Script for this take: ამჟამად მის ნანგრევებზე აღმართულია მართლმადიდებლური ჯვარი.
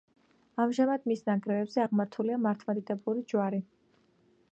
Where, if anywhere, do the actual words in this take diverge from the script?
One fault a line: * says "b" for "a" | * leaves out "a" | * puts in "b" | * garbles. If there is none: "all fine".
all fine